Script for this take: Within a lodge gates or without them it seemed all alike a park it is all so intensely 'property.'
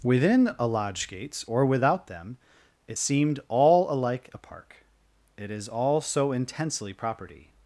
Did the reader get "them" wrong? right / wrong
right